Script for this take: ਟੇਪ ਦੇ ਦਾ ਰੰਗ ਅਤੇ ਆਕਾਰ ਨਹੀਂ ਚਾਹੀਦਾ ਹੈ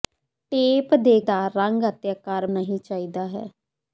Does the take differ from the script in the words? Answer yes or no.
no